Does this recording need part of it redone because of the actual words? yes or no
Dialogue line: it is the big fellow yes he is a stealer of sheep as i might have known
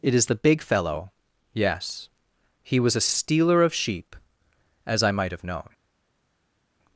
yes